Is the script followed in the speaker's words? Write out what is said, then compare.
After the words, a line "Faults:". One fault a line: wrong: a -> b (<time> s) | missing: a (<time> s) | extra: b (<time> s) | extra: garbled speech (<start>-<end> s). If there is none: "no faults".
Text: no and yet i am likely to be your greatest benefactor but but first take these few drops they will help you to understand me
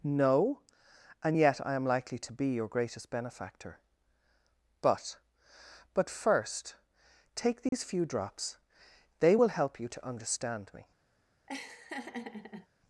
no and yet i am likely to be your greatest benefactor but but first take these few drops they will help you to understand me
Faults:
no faults